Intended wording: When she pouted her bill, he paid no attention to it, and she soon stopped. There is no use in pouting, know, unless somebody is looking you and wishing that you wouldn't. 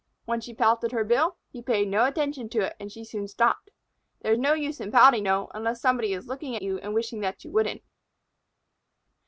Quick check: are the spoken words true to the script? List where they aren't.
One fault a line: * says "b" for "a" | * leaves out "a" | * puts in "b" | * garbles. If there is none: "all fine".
all fine